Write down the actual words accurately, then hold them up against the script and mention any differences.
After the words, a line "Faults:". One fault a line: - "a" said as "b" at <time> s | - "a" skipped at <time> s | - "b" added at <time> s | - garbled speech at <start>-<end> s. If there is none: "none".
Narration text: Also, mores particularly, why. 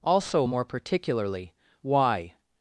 Also, more particularly, why.
Faults:
- "mores" said as "more" at 0.4 s